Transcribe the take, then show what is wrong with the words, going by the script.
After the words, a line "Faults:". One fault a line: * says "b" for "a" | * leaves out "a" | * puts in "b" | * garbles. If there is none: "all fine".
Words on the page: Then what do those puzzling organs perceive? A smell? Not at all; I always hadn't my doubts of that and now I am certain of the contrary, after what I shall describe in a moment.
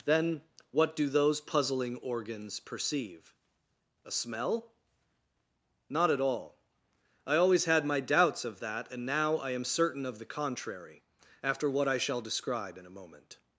Then what do those puzzling organs perceive? A smell? Not at all; I always had my doubts of that and now I am certain of the contrary, after what I shall describe in a moment.
Faults:
* says "had" for "hadn't"